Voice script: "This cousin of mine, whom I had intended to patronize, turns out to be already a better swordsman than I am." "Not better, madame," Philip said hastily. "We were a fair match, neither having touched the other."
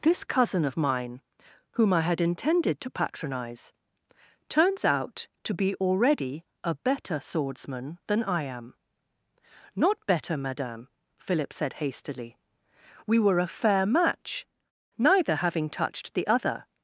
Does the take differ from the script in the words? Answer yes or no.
no